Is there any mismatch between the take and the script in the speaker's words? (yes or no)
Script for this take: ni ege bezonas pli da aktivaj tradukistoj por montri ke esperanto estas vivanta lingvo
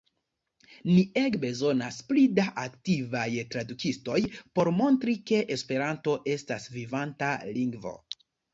no